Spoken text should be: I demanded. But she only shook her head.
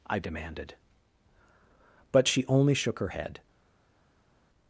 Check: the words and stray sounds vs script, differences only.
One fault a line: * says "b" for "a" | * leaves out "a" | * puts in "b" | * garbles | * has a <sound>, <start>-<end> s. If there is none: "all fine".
all fine